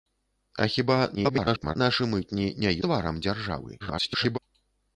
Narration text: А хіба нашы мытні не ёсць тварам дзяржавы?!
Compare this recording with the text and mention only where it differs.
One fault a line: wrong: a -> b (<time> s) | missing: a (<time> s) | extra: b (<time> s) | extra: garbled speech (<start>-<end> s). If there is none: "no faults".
extra: garbled speech (1.1-1.8 s)
missing: ёсць (2.7 s)
extra: garbled speech (3.8-4.4 s)